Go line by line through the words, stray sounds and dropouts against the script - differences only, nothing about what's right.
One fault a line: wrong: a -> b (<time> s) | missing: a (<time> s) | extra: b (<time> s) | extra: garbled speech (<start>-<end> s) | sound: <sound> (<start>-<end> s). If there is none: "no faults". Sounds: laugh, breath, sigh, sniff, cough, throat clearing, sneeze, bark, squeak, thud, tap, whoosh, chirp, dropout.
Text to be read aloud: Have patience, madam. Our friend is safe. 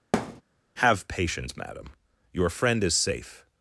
sound: thud (0.1-0.4 s)
wrong: Our -> Your (2.3 s)